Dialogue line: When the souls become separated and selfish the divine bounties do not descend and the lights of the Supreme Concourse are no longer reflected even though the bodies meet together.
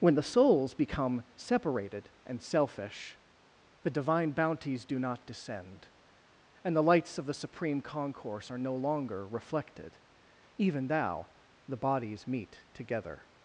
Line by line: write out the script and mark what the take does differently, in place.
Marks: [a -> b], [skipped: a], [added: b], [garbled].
When the souls become separated and selfish the divine bounties do not descend and the lights of the Supreme Concourse are no longer reflected even [though -> thou] the bodies meet together.